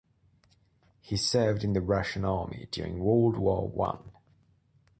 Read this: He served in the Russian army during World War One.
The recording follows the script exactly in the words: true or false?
true